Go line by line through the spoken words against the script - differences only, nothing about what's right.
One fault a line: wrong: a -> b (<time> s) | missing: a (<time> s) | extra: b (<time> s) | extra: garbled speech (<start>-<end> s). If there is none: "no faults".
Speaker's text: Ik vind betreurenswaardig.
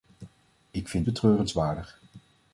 no faults